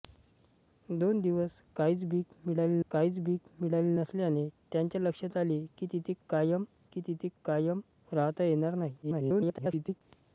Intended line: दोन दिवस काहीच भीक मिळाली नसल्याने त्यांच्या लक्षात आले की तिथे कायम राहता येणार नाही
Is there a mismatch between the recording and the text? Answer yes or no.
yes